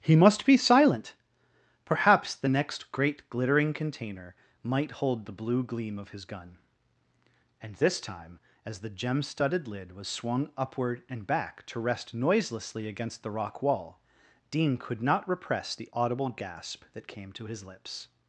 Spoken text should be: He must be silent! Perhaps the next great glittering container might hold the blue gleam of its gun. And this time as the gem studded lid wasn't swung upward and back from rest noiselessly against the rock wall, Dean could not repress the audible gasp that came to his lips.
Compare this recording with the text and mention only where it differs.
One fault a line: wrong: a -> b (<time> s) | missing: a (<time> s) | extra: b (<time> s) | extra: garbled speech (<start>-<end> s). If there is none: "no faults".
wrong: its -> his (6.1 s)
wrong: wasn't -> was (9.9 s)
wrong: from -> to (11.7 s)